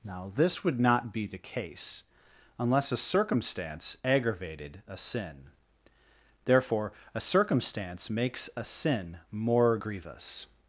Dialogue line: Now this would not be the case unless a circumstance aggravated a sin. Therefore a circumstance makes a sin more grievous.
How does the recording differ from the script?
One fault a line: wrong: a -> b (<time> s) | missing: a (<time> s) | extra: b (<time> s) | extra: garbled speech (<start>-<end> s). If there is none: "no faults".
no faults